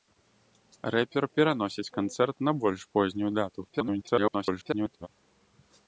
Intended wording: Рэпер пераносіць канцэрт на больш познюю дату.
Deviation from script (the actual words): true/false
true